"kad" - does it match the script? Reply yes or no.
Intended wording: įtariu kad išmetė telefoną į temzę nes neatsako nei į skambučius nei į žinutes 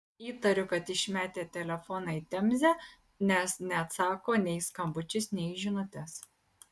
yes